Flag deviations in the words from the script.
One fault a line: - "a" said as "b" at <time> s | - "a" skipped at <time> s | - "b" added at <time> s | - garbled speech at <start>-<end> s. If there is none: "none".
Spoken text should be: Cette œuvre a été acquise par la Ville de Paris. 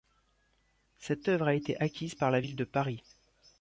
none